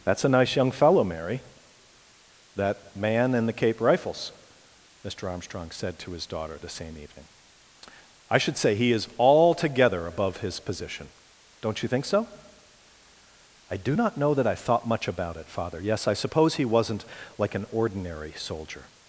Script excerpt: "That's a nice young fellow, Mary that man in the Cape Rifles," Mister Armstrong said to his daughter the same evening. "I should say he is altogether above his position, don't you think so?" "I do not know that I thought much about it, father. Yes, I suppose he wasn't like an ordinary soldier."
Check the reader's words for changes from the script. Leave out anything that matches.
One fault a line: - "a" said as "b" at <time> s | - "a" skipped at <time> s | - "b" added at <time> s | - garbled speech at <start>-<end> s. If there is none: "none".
none